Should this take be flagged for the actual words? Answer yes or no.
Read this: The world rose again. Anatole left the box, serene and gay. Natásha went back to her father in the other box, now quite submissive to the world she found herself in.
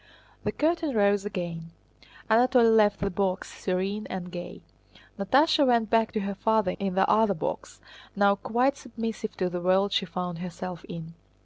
yes